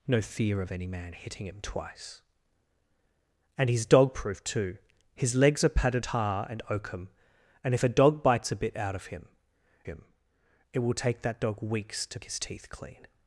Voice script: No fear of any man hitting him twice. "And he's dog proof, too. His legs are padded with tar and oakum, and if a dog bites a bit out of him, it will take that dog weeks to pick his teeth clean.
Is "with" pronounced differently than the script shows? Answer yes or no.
yes